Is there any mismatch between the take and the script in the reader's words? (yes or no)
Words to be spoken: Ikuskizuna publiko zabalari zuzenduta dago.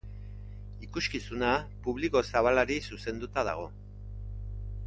no